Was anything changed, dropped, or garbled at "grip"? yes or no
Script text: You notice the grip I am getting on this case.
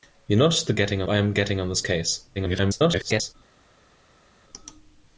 yes